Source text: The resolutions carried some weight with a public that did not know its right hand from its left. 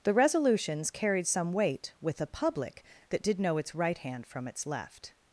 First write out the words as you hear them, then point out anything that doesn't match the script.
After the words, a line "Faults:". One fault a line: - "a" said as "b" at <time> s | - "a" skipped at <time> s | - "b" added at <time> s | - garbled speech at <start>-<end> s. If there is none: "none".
The resolutions carried some weight with a public that did know its right hand from its left.
Faults:
- "not" skipped at 3.4 s